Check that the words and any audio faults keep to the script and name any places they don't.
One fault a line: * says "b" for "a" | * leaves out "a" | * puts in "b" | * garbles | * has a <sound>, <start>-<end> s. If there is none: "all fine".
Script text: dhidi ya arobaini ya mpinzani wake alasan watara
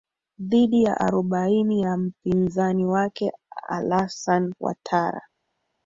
all fine